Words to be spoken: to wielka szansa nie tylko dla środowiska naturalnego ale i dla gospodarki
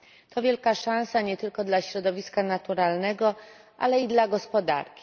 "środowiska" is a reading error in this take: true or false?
false